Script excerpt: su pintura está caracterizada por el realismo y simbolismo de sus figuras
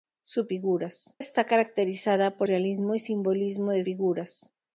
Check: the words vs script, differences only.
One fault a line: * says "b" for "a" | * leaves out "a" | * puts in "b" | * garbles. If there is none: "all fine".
* says "figuras" for "pintura"
* leaves out "el"
* leaves out "sus"